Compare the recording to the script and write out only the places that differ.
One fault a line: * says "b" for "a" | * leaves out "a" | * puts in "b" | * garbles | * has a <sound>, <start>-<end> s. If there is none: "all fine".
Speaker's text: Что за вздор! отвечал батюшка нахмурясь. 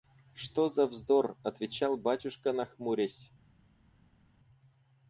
all fine